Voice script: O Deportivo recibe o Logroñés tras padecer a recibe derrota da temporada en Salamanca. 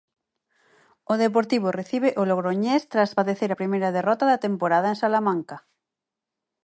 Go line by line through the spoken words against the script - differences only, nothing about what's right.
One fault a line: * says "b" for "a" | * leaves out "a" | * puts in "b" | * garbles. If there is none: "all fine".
* says "primeira" for "recibe"